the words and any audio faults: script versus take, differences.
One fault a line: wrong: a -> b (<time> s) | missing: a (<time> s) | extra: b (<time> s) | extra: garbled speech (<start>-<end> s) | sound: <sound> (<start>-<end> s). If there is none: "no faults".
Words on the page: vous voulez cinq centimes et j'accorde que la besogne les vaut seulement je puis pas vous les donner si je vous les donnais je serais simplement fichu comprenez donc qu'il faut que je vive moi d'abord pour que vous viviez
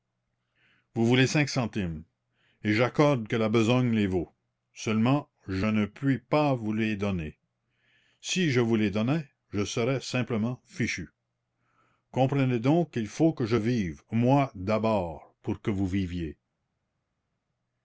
extra: ne (5.6 s)